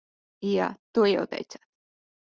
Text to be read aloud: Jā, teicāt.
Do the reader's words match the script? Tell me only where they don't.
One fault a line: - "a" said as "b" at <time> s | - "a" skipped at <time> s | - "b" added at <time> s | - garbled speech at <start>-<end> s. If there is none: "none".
- "to jau" added at 0.9 s